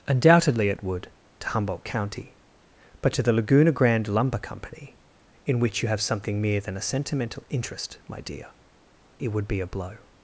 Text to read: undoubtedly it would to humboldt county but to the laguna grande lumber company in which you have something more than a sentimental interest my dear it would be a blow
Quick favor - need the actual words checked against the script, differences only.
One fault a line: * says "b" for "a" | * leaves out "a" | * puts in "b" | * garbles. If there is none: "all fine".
* says "mere" for "more"